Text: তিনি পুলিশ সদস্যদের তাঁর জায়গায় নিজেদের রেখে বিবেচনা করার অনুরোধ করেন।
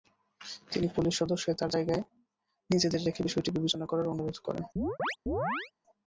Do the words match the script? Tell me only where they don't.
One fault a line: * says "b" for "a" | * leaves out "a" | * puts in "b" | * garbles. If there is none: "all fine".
* puts in "বিষয়টি"